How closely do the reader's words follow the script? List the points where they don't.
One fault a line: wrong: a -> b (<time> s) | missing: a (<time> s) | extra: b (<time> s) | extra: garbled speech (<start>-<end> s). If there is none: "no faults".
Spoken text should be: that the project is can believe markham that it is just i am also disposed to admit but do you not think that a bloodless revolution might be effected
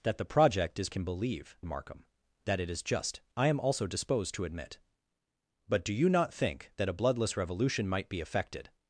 no faults